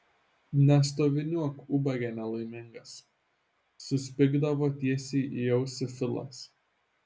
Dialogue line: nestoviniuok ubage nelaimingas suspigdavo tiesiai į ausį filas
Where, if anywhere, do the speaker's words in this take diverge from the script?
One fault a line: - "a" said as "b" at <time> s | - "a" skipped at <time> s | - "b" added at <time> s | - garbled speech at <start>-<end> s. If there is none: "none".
none